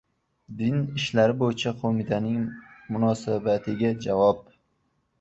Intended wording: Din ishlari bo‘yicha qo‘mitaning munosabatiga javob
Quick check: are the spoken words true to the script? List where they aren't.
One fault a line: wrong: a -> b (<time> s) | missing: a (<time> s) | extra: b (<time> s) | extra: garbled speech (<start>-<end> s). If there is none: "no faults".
no faults